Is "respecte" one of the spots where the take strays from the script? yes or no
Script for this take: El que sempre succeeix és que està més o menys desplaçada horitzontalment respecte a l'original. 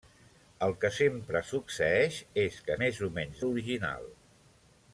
yes